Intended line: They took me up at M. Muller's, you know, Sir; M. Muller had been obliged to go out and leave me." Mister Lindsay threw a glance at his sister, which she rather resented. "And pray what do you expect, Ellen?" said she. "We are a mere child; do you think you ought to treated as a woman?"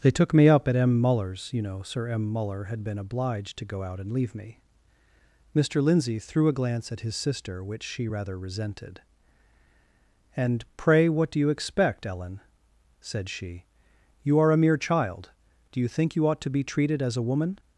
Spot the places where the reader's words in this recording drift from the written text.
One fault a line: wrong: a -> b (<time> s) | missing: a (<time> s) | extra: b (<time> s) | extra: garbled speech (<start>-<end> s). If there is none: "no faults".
wrong: We -> You (14.2 s)
extra: be (16.5 s)